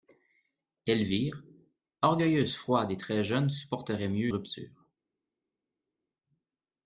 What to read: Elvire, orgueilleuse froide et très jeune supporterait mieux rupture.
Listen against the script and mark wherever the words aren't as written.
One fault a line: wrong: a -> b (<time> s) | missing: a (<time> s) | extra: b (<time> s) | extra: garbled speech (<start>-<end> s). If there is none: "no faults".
no faults